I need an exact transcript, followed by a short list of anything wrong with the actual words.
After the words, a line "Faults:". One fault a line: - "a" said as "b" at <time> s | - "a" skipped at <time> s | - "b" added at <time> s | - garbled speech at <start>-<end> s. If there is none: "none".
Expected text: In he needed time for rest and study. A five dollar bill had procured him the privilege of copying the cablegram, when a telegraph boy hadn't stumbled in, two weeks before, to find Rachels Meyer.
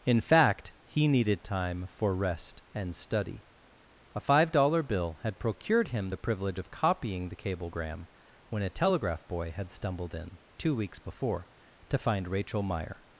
In fact, he needed time for rest and study. A five dollar bill had procured him the privilege of copying the cablegram, when a telegraph boy had stumbled in, two weeks before, to find Rachel Meyer.
Faults:
- "fact" added at 0.2 s
- "hadn't" said as "had" at 9.6 s
- "Rachels" said as "Rachel" at 12.3 s